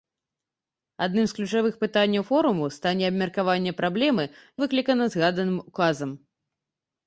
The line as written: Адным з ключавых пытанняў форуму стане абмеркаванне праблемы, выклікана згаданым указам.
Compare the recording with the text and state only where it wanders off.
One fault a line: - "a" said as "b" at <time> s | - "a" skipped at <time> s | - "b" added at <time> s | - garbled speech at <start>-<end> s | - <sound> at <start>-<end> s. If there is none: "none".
none